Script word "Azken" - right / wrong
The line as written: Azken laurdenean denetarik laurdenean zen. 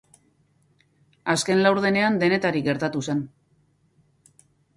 right